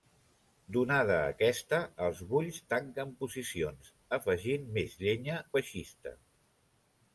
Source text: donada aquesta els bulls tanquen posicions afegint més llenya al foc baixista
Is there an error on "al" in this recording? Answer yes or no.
yes